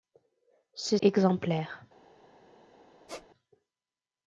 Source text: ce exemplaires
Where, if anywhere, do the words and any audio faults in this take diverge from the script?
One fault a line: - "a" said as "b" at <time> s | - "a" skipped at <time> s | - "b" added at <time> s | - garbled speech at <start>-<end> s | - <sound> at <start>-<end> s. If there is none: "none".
- squeak at 3.1-3.3 s